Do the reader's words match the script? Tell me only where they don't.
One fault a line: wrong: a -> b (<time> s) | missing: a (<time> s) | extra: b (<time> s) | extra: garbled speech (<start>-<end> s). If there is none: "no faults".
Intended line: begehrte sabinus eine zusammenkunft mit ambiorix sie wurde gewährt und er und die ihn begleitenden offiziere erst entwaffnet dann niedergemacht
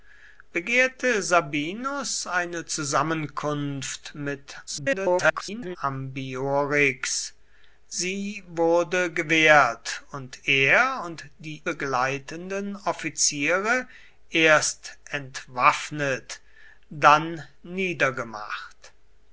extra: garbled speech (4.7-5.8 s)
missing: ihn (11.6 s)